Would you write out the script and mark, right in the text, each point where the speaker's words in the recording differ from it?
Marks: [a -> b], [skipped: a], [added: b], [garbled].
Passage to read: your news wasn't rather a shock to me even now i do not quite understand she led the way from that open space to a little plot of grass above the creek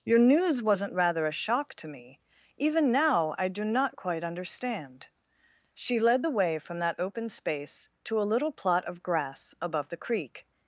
your news wasn't rather a shock to me even now i do not quite understand she led the way from that open space to a little plot of grass above the creek